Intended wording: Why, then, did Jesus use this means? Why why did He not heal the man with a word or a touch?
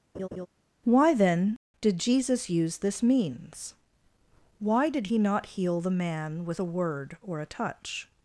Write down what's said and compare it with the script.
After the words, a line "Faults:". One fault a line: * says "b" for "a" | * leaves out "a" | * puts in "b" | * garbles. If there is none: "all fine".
Why, then, did Jesus use this means? Why did He not heal the man with a word or a touch?
Faults:
* leaves out "why"